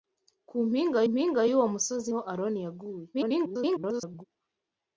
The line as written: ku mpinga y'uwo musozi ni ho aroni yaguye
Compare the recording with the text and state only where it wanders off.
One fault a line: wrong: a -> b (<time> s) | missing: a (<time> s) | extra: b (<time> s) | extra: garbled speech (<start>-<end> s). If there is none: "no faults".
extra: mpinga (1.1 s)
missing: ni (2.1 s)
extra: garbled speech (3.1-4.3 s)